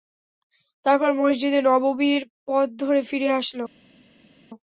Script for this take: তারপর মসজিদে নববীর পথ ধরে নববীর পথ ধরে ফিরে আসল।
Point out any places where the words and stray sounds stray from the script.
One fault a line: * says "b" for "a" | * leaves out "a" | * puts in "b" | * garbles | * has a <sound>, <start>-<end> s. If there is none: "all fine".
* leaves out "নববীর পথ ধরে"